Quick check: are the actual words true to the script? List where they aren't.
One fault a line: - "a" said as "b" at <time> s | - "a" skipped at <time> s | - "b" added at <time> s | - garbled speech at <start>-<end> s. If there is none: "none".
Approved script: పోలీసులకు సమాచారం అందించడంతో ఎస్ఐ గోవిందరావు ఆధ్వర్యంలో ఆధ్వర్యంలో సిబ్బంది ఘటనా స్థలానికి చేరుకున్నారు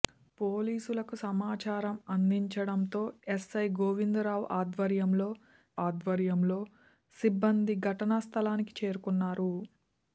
none